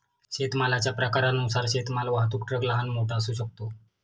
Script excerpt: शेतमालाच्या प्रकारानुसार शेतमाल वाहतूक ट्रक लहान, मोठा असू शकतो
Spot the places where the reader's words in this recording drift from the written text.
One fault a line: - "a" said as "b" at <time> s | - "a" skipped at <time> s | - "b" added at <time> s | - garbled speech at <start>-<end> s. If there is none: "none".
none